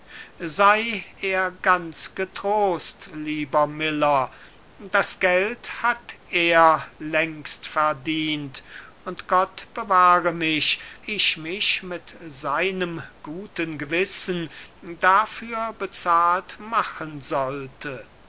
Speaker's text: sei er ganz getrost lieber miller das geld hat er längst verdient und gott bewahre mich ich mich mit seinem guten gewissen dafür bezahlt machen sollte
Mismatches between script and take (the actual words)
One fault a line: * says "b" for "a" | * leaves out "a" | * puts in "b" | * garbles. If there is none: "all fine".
all fine